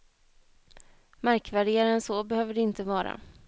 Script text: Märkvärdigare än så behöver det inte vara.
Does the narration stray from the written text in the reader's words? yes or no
no